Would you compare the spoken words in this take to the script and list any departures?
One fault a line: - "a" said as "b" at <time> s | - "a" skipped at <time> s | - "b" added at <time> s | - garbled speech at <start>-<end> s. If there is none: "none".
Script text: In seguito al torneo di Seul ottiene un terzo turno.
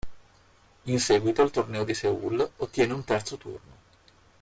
none